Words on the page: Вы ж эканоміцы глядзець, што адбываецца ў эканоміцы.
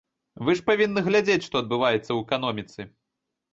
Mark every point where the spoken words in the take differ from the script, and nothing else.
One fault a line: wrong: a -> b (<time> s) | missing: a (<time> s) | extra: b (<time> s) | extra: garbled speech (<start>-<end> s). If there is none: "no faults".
wrong: эканоміцы -> павінны (0.7 s)